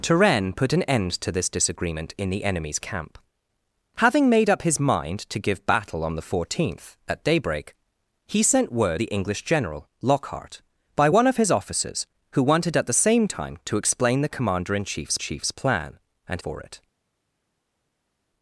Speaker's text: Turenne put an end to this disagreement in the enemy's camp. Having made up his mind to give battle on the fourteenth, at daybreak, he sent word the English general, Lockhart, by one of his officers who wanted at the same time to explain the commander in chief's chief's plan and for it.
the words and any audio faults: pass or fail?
pass